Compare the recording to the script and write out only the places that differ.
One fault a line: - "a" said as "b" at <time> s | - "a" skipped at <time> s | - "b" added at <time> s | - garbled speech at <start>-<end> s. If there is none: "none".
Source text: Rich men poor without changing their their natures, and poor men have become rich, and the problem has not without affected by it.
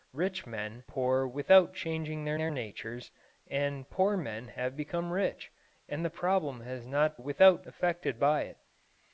none